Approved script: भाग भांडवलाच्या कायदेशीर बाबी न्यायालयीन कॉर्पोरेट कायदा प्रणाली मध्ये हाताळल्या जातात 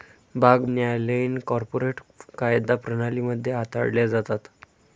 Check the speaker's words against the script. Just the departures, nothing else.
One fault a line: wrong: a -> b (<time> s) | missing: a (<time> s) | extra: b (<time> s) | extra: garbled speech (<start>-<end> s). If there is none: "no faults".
missing: भांडवलाच्या कायदेशीर बाबी (0.6 s)